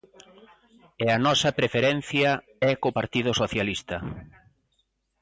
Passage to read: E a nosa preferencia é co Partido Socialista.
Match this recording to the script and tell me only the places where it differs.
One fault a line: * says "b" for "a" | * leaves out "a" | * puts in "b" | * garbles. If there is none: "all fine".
all fine